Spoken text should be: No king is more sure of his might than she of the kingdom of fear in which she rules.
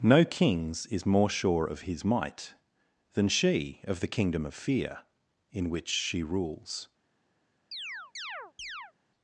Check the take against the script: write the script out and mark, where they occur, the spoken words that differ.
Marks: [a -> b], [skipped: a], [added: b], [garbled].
No [king -> kings] is more sure of his might than she of the kingdom of fear in which she rules.